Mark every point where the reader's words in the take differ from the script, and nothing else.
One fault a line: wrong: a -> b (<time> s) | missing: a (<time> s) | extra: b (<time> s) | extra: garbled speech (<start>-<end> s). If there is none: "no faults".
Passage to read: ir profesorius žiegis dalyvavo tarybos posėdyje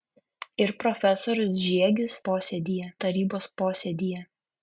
wrong: dalyvavo -> posėdyje (2.3 s)